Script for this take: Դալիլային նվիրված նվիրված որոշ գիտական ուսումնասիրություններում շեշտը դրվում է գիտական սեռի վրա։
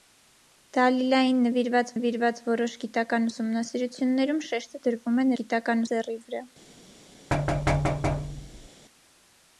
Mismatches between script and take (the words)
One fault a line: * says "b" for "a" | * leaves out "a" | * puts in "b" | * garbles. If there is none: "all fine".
all fine